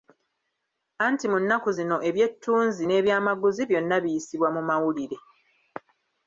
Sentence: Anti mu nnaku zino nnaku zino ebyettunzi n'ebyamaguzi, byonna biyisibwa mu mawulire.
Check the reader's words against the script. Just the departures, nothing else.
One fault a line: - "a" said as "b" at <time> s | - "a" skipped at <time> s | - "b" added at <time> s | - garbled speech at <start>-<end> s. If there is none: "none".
- "nnaku zino" skipped at 2.0 s